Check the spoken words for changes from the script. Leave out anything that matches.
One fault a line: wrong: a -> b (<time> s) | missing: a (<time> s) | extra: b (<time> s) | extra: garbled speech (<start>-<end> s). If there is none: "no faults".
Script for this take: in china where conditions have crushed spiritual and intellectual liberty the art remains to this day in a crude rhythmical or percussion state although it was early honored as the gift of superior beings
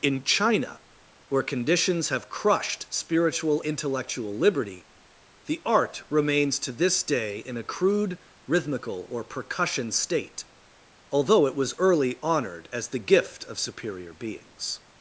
missing: and (3.6 s)